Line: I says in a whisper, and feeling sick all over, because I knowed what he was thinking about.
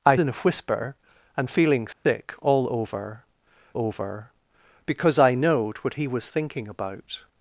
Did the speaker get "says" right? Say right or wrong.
wrong